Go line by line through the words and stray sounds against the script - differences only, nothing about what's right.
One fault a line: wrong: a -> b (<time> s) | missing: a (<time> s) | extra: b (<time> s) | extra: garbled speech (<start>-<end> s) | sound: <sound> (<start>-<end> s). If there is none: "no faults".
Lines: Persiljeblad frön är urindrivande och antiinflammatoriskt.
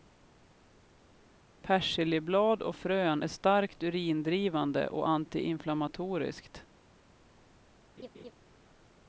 extra: och (2.6 s)
extra: starkt (3.3 s)
sound: laugh (8.0-8.3 s)